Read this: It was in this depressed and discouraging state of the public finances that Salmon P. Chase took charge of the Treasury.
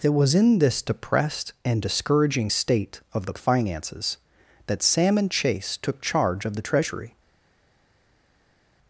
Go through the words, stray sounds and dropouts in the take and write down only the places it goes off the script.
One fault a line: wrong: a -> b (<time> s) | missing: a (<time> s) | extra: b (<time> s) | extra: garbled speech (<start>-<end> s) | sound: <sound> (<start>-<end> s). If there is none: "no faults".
missing: public (3.3 s)
missing: P (5.3 s)